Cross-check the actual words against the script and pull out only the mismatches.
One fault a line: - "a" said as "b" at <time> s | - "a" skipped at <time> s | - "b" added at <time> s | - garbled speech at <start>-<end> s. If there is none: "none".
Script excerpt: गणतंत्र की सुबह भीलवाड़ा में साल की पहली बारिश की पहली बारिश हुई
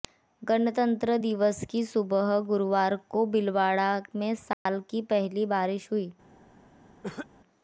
- "दिवस" added at 1.2 s
- "गुरुवार को" added at 2.5 s
- "की पहली बारिश" skipped at 5.9 s